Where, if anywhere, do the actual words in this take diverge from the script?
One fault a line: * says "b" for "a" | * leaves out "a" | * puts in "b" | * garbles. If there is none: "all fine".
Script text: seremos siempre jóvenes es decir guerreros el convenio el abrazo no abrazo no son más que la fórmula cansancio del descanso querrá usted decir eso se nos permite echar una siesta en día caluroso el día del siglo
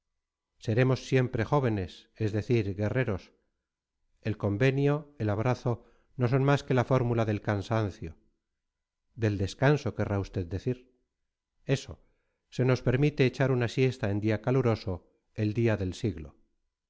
* leaves out "abrazo no"
* puts in "del"